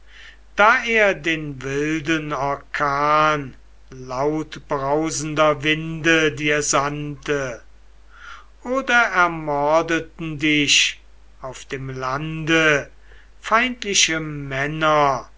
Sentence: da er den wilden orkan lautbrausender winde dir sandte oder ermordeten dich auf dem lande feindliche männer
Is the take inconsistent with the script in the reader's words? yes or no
no